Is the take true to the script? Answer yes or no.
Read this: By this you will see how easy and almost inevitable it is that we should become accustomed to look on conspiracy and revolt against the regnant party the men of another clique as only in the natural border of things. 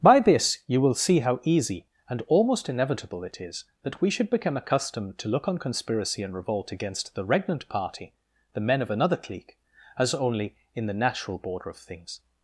yes